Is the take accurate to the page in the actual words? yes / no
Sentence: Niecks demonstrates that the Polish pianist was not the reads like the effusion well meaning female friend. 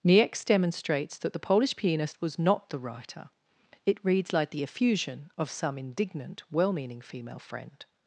no